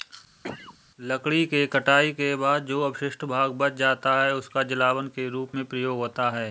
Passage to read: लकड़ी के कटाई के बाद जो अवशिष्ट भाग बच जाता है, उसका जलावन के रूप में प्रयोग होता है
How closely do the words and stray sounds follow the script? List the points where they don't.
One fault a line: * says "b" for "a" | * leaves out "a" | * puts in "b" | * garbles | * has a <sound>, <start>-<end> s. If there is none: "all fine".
* has a cough, 0.4-0.8 s